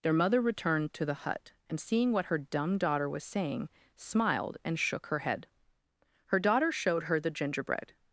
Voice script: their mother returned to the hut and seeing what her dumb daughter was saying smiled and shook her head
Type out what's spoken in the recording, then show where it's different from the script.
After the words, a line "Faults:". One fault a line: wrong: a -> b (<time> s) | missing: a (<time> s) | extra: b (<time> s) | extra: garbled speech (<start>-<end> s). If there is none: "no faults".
their mother returned to the hut and seeing what her dumb daughter was saying smiled and shook her head her daughter showed her the gingerbread
Faults:
extra: her daughter showed her the gingerbread (6.3 s)